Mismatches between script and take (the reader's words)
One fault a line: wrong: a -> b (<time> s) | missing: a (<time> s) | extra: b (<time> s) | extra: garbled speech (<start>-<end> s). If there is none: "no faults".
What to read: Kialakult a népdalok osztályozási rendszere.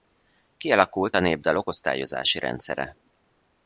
no faults